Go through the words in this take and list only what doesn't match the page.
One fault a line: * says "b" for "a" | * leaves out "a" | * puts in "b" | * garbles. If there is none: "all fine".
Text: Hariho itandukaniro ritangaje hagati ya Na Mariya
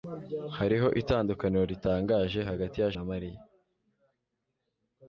all fine